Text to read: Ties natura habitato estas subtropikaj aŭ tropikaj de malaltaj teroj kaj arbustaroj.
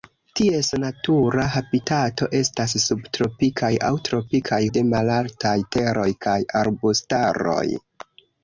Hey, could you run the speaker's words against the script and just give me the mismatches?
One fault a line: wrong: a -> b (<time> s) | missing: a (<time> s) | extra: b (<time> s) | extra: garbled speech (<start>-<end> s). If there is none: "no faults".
no faults